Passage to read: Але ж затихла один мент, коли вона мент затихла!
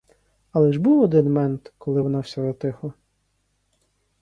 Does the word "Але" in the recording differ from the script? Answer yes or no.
no